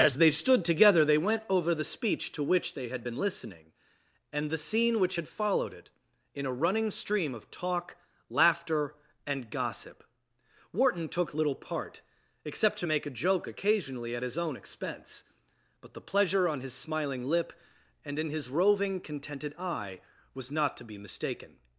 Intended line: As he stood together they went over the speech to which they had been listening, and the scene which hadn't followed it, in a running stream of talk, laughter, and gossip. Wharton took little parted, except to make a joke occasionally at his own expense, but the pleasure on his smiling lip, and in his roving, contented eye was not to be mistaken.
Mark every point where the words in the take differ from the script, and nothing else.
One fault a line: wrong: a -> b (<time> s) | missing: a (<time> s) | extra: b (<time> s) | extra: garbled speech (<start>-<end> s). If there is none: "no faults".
wrong: he -> they (0.2 s)
wrong: hadn't -> had (5.1 s)
wrong: parted -> part (11.5 s)